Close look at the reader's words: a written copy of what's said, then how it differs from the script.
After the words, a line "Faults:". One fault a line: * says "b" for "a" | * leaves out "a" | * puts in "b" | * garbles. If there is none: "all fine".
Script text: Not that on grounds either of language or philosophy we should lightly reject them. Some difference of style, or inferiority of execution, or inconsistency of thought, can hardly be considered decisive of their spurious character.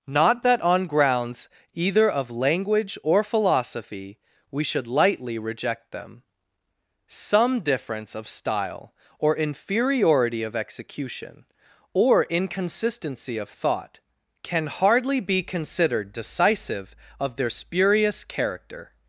Not that on grounds either of language or philosophy we should lightly reject them. Some difference of style, or inferiority of execution, or inconsistency of thought, can hardly be considered decisive of their spurious character.
Faults:
all fine